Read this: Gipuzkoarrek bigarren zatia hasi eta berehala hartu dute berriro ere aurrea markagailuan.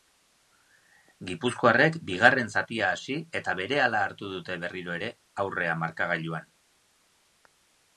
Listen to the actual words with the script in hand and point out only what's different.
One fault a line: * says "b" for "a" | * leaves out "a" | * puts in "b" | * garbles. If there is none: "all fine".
all fine